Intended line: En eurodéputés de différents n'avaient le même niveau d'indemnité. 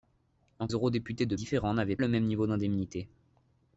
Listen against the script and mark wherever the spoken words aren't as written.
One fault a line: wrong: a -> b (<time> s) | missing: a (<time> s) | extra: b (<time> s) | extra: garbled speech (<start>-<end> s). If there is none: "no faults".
no faults